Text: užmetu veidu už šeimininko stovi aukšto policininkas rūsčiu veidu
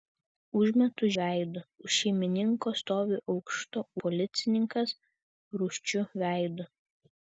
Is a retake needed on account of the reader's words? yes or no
no